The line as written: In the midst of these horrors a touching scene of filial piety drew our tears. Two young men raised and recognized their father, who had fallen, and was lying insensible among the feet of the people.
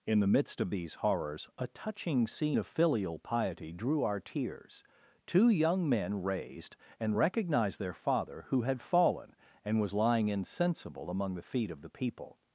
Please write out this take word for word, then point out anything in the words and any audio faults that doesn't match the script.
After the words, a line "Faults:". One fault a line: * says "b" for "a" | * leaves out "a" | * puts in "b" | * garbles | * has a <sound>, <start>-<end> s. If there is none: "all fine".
In the midst of these horrors a touching scene of filial piety drew our tears. Two young men raised and recognized their father, who had fallen, and was lying insensible among the feet of the people.
Faults:
all fine